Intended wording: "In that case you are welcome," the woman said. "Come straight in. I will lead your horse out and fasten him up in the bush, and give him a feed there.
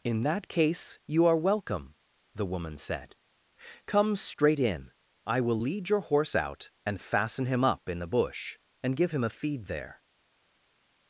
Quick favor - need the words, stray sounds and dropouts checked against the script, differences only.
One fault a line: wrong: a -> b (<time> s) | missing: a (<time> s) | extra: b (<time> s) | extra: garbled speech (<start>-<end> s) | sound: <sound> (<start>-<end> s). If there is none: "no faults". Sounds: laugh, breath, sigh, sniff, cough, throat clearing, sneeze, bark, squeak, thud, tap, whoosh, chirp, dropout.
no faults